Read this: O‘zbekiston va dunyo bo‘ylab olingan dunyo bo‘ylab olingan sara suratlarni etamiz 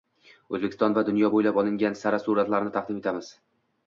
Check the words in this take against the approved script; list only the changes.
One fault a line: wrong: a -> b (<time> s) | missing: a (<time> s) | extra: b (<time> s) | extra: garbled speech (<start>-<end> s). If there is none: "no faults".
missing: dunyo bo‘ylab olingan (2.0 s)
extra: taqdim (2.8 s)